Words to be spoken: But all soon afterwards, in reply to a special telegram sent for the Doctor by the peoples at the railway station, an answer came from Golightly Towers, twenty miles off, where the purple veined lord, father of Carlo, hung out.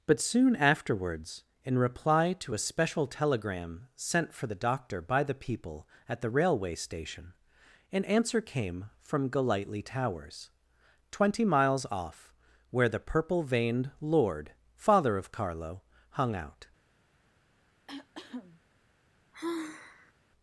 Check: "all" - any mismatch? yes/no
yes